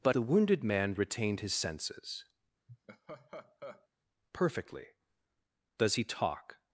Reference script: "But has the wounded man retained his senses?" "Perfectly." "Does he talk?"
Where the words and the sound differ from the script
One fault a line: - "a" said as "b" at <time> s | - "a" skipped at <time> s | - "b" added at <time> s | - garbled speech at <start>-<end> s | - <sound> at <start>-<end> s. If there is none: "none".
- "has" skipped at 0.1 s
- laugh at 2.7-3.9 s